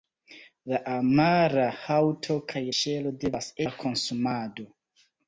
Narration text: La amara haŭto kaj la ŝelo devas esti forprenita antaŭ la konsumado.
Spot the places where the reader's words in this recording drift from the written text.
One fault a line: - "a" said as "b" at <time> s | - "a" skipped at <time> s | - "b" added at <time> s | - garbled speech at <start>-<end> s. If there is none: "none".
- "la" skipped at 2.6 s
- "esti forprenita antaŭ" skipped at 3.5 s